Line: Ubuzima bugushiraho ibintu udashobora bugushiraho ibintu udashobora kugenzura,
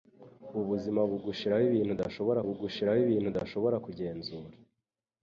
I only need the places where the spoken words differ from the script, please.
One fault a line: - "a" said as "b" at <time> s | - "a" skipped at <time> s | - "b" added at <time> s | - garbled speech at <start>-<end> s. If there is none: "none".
none